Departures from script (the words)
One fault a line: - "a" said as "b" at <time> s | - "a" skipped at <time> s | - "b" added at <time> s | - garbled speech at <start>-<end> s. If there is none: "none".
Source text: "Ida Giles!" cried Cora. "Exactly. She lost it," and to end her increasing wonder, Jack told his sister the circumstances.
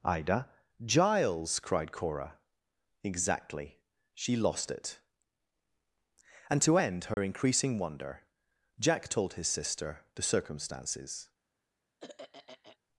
none